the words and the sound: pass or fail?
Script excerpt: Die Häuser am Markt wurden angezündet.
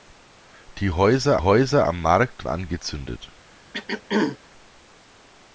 fail